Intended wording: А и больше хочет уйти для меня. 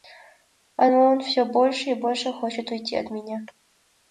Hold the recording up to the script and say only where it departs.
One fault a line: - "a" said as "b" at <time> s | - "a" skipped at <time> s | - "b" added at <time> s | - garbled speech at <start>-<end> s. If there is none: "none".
- "он всё больше" added at 0.9 s
- "для" said as "от" at 3.0 s